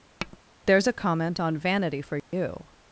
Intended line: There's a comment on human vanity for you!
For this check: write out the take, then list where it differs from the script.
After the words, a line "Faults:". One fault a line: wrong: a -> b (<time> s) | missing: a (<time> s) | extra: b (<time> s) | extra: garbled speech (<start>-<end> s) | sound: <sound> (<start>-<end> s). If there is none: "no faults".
There's a comment on vanity for you!
Faults:
sound: tap (0.2-0.4 s)
missing: human (1.6 s)
sound: dropout (2.2-2.3 s)